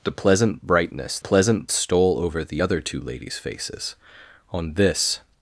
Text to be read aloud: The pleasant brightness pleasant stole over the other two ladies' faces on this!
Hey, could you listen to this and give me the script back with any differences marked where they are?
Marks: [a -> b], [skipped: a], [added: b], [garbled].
The pleasant brightness pleasant stole over the other two ladies' faces on this!